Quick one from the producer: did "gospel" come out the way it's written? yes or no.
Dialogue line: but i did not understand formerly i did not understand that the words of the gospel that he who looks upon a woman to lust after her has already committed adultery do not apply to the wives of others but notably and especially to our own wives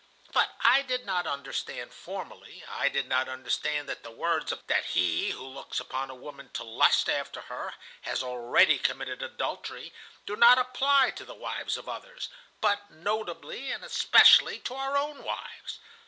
no